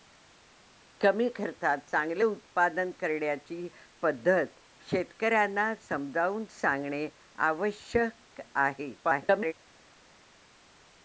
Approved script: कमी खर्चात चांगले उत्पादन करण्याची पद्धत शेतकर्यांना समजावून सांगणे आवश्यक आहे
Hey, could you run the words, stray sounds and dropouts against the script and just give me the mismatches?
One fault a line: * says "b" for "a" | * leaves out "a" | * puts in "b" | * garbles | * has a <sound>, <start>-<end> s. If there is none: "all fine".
* garbles